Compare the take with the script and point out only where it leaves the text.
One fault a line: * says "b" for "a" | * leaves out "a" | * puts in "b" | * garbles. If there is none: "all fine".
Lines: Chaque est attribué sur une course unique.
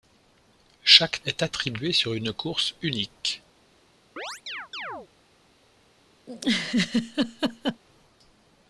all fine